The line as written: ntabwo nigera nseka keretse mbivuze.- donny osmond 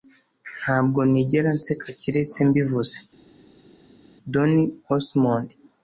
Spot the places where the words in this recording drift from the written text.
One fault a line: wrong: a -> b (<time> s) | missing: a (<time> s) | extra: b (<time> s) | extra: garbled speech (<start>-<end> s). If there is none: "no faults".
no faults